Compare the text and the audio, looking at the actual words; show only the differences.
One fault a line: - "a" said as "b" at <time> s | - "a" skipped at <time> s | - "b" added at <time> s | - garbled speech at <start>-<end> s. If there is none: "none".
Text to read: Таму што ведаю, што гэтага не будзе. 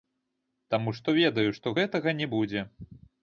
none